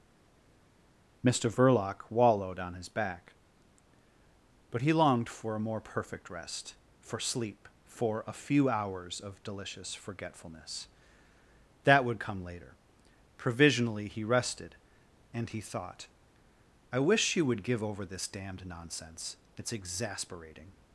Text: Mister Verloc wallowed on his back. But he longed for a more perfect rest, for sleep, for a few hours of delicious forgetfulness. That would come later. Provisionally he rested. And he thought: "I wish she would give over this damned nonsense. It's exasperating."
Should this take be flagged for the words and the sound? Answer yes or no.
no